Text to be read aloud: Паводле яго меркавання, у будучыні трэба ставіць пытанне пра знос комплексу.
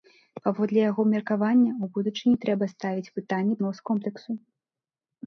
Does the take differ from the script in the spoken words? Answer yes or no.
yes